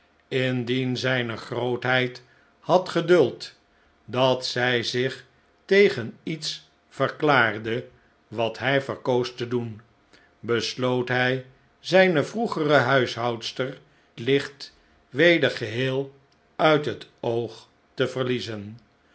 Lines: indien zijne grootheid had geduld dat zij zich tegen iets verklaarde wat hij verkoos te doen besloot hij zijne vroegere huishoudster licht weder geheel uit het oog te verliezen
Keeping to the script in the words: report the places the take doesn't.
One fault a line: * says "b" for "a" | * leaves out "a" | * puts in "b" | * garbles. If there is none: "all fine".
all fine